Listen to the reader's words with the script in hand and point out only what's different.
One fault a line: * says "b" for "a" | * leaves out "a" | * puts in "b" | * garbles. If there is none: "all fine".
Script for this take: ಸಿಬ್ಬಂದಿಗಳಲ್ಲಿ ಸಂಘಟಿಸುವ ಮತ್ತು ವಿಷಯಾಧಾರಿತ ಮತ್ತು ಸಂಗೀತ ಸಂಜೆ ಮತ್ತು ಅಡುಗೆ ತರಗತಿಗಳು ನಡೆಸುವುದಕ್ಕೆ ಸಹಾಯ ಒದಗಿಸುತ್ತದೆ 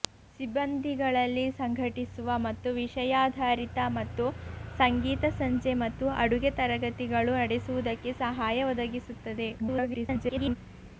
* garbles